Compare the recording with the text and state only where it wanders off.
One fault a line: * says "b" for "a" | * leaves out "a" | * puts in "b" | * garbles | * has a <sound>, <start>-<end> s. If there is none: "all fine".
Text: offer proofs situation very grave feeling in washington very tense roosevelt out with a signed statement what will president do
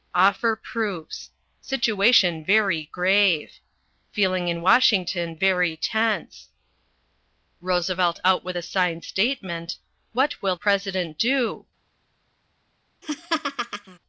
* has a laugh, 13.0-14.0 s